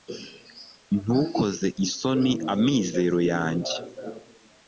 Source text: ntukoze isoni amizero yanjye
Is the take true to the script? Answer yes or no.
yes